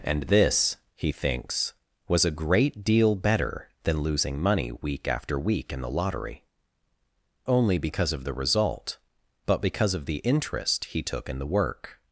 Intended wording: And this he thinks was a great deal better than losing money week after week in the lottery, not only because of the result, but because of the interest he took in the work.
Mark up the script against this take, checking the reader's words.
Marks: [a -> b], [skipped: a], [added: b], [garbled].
And this he thinks was a great deal better than losing money week after week in the lottery, [skipped: not] only because of the result, but because of the interest he took in the work.